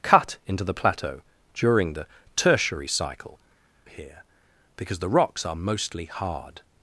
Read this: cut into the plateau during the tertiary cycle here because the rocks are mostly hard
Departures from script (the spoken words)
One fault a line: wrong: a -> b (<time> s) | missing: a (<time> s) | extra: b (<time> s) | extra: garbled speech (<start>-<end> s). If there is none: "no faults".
no faults